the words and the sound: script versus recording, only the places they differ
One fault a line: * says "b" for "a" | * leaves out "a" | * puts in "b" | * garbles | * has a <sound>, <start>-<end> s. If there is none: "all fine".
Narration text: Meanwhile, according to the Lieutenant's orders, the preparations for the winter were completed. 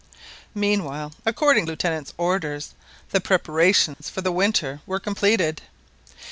* leaves out "to the"
* has a dropout, 3.9-4.0 s